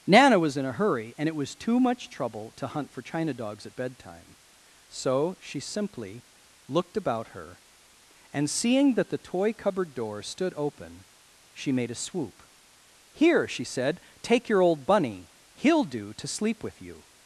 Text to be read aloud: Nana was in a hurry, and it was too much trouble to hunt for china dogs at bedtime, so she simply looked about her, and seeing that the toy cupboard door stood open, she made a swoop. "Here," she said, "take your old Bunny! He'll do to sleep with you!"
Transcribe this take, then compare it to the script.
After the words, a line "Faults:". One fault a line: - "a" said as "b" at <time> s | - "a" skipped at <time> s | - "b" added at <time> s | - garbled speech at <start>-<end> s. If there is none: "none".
Nana was in a hurry, and it was too much trouble to hunt for china dogs at bedtime, so she simply looked about her, and seeing that the toy cupboard door stood open, she made a swoop. "Here," she said, "take your old Bunny! He'll do to sleep with you!"
Faults:
none